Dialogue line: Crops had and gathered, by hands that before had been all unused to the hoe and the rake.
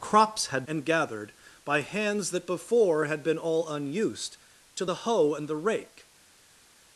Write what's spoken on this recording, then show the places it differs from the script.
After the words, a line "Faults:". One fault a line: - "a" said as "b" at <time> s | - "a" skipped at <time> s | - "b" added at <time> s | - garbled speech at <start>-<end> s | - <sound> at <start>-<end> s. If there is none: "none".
Crops had and gathered, by hands that before had been all unused to the hoe and the rake.
Faults:
none